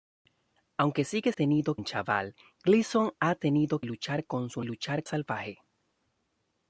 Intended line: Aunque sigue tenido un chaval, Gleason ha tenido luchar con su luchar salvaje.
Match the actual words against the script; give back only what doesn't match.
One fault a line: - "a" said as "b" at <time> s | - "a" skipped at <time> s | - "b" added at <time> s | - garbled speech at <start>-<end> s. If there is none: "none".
none